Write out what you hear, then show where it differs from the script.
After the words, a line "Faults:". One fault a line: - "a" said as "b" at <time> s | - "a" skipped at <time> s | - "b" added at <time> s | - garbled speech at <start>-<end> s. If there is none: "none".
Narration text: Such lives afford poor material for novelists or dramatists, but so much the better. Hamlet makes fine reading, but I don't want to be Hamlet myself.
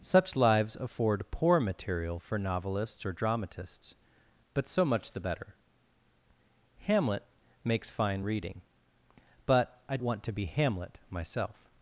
Such lives afford poor material for novelists or dramatists, but so much the better. Hamlet makes fine reading, but I want to be Hamlet myself.
Faults:
- "don't" skipped at 10.0 s